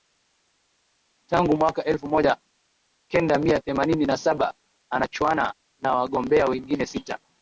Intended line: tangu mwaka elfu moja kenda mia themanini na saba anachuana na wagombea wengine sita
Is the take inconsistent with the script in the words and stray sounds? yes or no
no